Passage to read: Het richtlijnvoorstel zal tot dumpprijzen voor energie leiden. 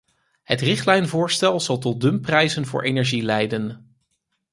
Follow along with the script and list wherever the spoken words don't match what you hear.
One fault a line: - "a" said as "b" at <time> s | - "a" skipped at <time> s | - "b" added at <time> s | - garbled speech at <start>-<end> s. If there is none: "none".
none